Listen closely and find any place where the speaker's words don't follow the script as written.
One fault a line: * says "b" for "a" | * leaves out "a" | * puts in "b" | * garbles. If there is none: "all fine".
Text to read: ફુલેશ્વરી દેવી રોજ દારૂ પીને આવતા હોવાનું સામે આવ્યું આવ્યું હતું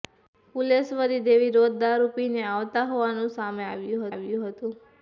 all fine